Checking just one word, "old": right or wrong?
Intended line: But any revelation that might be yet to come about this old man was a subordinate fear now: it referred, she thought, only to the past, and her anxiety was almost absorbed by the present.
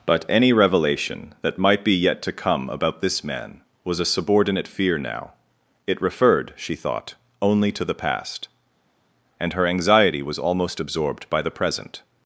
wrong